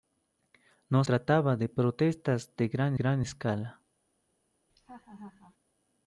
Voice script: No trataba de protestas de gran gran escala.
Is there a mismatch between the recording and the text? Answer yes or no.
no